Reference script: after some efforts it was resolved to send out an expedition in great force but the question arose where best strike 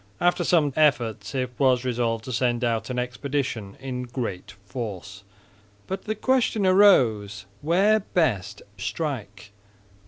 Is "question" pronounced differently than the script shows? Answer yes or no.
no